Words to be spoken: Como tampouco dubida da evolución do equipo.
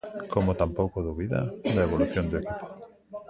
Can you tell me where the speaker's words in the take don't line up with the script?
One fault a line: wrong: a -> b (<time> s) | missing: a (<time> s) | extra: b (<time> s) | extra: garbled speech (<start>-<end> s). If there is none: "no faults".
no faults